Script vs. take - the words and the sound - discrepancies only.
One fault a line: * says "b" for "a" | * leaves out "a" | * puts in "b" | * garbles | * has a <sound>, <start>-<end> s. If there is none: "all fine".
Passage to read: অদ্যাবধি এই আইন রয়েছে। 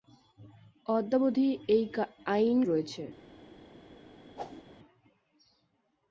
* has a whoosh, 4.4-4.6 s